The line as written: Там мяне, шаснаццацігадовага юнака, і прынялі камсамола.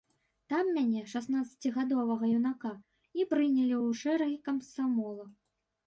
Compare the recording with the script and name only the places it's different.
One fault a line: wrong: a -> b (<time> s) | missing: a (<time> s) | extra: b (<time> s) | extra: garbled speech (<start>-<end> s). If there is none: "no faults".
extra: ў шэрагі (3.8 s)